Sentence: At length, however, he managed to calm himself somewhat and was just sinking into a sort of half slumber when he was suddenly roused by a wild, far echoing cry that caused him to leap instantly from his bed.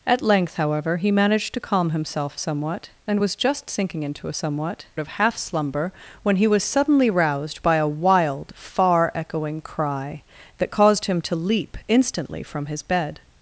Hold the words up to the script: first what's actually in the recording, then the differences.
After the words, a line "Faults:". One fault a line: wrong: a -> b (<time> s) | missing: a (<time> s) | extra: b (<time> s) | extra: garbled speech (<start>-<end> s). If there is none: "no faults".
At length, however, he managed to calm himself somewhat and was just sinking into a somewhat of half slumber when he was suddenly roused by a wild, far echoing cry that caused him to leap instantly from his bed.
Faults:
wrong: sort -> somewhat (4.3 s)